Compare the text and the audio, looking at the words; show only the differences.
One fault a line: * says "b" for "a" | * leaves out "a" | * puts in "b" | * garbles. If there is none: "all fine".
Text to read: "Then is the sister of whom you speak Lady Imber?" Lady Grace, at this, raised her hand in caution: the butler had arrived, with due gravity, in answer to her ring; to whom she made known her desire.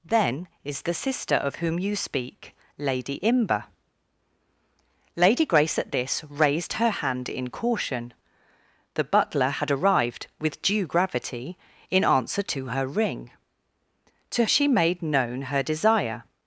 * leaves out "whom"